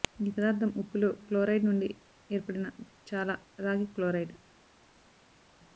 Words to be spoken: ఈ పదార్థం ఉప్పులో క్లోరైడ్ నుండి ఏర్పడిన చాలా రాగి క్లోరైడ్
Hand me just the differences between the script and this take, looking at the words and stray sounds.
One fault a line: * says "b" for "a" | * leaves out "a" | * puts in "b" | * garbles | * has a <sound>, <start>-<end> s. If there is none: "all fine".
all fine